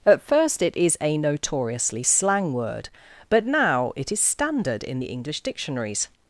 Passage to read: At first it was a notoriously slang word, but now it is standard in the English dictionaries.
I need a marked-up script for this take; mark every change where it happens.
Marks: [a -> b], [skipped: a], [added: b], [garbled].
At first it [was -> is] a notoriously slang word, but now it is standard in the English dictionaries.